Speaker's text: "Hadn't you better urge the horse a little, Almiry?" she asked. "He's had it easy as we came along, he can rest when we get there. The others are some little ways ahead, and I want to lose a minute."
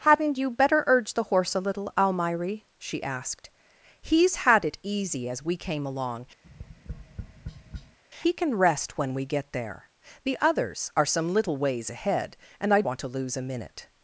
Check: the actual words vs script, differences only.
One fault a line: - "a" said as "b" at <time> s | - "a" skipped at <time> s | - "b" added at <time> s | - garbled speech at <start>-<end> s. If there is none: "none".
none